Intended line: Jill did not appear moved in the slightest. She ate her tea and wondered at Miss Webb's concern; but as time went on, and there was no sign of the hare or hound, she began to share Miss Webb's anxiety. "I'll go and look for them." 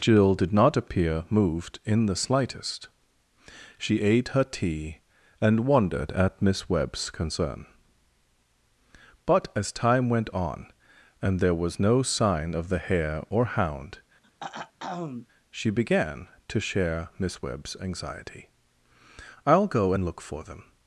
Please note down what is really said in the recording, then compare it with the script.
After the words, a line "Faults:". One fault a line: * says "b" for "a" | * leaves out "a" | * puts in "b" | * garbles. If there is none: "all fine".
Jill did not appear moved in the slightest. She ate her tea and wondered at Miss Webb's concern; but as time went on, and there was no sign of the hare or hound, she began to share Miss Webb's anxiety. "I'll go and look for them."
Faults:
all fine